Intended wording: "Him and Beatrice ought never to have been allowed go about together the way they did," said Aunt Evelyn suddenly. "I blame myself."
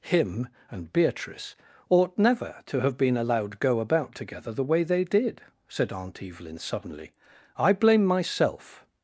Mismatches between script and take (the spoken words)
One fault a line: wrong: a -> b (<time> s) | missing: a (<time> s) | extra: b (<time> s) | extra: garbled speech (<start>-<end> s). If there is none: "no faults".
no faults